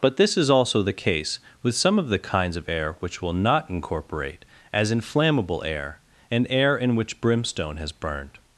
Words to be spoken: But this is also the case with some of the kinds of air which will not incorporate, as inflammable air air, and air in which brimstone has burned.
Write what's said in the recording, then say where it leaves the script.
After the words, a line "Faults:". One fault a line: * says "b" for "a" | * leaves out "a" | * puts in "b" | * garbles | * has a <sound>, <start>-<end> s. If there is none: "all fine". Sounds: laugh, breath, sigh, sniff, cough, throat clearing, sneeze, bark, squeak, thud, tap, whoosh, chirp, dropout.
But this is also the case with some of the kinds of air which will not incorporate, as inflammable air, and air in which brimstone has burned.
Faults:
* leaves out "air"